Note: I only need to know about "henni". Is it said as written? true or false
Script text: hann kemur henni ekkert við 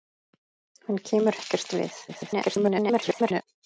false